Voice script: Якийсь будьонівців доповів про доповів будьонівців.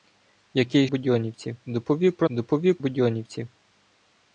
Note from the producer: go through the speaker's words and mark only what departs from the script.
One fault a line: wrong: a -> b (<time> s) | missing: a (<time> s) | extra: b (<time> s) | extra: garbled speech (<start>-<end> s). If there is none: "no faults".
no faults